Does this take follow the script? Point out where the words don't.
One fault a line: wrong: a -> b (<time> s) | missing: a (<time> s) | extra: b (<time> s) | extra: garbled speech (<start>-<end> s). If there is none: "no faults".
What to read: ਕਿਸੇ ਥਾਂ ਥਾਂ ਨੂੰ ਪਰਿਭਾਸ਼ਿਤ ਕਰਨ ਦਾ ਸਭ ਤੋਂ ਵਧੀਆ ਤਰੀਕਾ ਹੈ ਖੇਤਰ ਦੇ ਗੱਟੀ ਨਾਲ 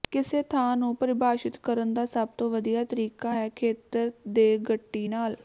missing: ਥਾਂ (0.8 s)